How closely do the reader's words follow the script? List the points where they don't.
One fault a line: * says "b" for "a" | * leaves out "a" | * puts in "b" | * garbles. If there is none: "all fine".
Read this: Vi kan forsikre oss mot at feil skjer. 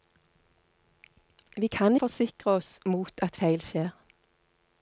all fine